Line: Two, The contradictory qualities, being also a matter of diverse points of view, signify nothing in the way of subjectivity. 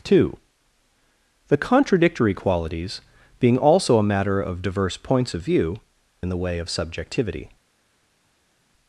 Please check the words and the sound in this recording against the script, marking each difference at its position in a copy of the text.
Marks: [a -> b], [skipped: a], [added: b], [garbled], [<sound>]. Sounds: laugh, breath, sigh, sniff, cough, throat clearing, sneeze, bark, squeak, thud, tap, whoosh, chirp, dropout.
Two, The contradictory qualities, being also a matter of diverse points of view, [skipped: signify nothing] in the way of subjectivity.